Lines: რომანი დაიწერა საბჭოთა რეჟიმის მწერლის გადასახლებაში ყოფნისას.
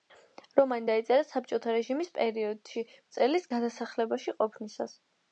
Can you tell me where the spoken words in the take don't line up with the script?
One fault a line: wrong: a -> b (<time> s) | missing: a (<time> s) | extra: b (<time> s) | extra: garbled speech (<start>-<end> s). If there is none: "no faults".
extra: პერიოდში (2.2 s)